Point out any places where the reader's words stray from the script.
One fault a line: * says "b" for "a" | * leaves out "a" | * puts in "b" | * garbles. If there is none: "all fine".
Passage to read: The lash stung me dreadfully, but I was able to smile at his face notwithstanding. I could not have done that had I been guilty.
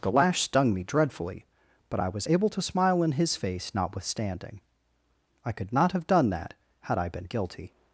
* says "in" for "at"